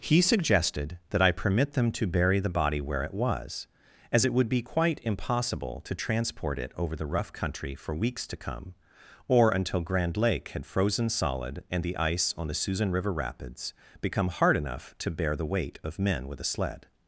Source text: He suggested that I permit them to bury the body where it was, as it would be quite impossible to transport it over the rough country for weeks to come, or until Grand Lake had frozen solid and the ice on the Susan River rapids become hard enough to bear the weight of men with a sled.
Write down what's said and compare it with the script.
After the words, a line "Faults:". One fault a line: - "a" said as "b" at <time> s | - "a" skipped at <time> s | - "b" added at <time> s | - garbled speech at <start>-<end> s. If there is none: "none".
He suggested that I permit them to bury the body where it was, as it would be quite impossible to transport it over the rough country for weeks to come, or until Grand Lake had frozen solid and the ice on the Susan River rapids become hard enough to bear the weight of men with a sled.
Faults:
none